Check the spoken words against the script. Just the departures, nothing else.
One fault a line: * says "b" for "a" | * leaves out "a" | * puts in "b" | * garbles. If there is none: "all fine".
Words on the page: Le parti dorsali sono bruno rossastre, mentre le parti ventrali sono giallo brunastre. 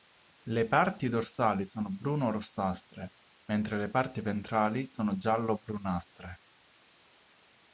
all fine